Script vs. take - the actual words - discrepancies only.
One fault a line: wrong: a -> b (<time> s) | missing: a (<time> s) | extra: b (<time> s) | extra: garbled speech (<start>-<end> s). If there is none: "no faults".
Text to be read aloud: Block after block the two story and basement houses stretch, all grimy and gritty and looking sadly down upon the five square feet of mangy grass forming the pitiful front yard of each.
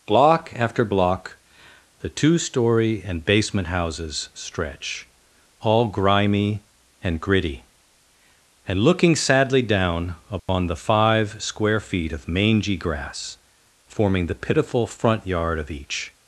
no faults